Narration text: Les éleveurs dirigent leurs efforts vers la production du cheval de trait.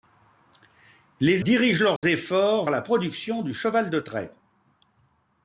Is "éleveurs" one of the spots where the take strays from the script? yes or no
yes